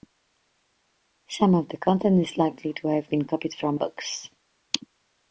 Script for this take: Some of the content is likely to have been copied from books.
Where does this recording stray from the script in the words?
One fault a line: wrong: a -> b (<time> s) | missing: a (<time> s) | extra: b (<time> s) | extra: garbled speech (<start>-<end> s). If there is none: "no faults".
no faults